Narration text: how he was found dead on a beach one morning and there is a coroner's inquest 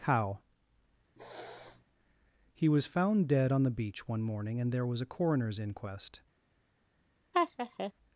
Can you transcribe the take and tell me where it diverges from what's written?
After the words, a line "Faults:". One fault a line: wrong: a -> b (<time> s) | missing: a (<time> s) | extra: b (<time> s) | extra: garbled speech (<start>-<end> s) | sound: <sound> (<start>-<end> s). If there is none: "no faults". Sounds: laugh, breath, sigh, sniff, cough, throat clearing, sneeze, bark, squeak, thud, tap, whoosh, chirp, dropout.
how he was found dead on the beach one morning and there was a coroner's inquest
Faults:
sound: sniff (1.2-1.8 s)
wrong: a -> the (3.6 s)
wrong: is -> was (4.9 s)
sound: laugh (7.3-7.9 s)